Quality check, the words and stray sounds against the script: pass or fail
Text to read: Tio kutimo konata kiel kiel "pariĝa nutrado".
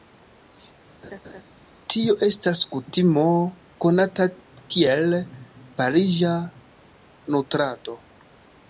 fail